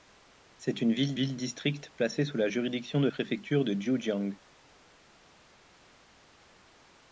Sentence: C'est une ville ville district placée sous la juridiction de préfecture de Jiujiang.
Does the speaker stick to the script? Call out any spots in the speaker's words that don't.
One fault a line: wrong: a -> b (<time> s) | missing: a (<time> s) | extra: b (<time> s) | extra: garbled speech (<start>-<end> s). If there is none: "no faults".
no faults